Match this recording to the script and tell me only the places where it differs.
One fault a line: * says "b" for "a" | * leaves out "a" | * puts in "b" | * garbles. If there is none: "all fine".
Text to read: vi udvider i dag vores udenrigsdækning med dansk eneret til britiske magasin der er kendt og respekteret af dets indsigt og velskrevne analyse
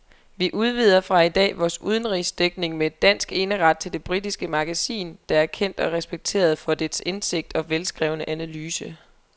* puts in "fra"
* puts in "det"
* says "for" for "af"